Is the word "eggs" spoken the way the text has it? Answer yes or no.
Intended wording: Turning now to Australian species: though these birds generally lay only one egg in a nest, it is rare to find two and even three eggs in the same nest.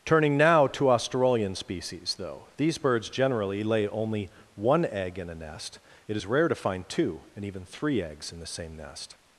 yes